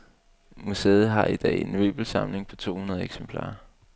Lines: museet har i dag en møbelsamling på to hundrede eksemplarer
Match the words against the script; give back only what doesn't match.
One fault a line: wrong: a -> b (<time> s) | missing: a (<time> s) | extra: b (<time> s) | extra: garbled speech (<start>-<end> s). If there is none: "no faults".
no faults